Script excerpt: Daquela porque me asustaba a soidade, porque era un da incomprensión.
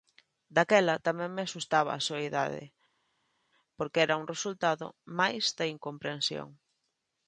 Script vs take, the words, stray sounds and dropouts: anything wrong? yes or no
yes